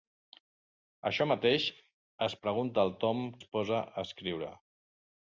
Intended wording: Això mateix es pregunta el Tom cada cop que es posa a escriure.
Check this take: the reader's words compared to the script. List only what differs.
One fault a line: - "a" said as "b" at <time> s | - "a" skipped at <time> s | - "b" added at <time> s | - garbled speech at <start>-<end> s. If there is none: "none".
- "cada cop que" skipped at 3.2 s